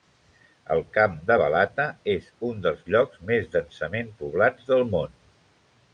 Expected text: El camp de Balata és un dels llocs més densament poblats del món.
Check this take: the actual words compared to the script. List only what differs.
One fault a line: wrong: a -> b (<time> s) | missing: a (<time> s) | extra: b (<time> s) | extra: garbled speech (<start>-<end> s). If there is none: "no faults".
no faults